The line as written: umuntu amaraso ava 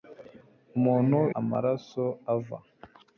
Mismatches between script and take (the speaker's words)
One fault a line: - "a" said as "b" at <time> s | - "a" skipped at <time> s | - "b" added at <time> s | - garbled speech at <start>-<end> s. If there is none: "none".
none